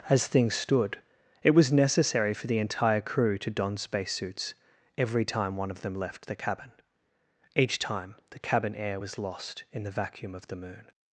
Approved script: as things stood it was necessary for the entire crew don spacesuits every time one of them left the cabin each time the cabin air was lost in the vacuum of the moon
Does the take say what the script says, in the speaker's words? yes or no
no